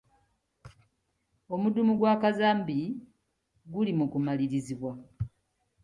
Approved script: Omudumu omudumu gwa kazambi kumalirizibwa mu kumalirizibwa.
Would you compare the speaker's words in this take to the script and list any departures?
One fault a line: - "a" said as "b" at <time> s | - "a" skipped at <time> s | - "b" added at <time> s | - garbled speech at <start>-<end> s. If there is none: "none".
- "omudumu" skipped at 1.9 s
- "kumalirizibwa" said as "guli" at 3.7 s